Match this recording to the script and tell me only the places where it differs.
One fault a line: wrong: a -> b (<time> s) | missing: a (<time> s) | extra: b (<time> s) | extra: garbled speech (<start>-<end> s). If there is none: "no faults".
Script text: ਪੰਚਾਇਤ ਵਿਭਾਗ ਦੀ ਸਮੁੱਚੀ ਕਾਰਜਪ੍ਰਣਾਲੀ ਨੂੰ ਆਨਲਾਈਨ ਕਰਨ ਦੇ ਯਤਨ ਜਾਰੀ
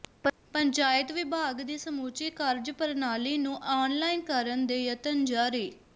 no faults